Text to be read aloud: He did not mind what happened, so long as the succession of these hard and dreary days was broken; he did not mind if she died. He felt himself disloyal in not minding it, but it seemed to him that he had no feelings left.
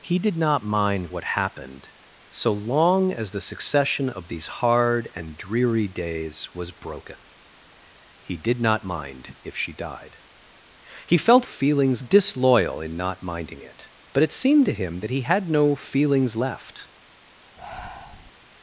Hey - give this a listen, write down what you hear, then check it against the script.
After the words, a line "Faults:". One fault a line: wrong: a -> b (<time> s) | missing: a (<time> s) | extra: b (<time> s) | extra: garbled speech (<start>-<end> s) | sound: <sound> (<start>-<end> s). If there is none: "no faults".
He did not mind what happened, so long as the succession of these hard and dreary days was broken; he did not mind if she died. He felt feelings disloyal in not minding it, but it seemed to him that he had no feelings left.
Faults:
wrong: himself -> feelings (11.4 s)
sound: breath (17.6-18.3 s)